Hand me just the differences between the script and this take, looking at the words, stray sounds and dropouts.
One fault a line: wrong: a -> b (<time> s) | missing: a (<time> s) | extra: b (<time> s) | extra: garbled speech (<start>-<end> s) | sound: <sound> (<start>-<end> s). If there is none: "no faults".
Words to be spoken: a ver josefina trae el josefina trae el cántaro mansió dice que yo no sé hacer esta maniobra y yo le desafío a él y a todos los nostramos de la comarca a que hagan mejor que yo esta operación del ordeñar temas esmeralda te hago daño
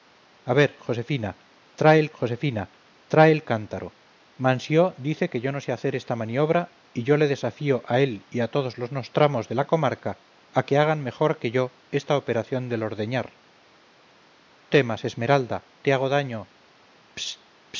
no faults